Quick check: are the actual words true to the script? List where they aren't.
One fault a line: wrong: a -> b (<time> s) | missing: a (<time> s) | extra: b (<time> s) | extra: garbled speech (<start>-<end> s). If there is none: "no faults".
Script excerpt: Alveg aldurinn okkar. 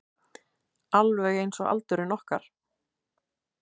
extra: einsog (1.4 s)